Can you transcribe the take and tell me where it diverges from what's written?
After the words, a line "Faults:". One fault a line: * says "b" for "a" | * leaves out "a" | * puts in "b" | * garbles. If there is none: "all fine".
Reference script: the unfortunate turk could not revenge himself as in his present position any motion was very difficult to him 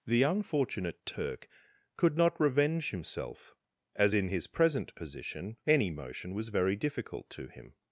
the unfortunate turk could not revenge himself as in his present position any motion was very difficult to him
Faults:
all fine